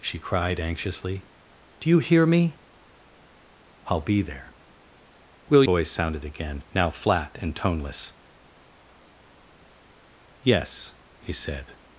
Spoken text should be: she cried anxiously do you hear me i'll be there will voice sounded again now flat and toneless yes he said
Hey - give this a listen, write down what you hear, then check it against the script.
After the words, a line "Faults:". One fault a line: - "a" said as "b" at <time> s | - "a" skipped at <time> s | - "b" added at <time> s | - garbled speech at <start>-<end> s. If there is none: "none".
she cried anxiously do you hear me i'll be there will voice sounded again now flat and toneless yes he said
Faults:
none